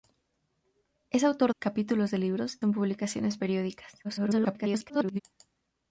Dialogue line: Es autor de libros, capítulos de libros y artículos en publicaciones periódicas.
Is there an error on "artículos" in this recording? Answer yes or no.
yes